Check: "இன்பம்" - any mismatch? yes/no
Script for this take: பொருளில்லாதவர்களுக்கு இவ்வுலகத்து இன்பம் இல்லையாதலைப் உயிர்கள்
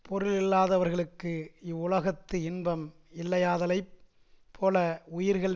no